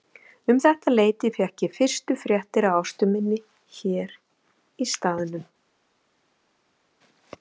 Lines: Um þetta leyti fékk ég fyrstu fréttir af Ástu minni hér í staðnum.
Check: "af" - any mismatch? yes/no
no